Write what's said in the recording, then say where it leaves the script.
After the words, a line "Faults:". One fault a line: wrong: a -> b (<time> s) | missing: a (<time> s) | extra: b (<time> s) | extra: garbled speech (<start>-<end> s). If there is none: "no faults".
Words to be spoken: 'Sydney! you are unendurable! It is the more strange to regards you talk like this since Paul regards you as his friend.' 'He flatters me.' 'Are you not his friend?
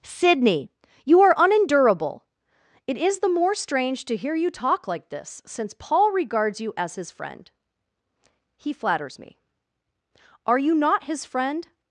'Sydney! you are unendurable! It is the more strange to hear you talk like this since Paul regards you as his friend.' 'He flatters me.' 'Are you not his friend?
Faults:
wrong: regards -> hear (4.2 s)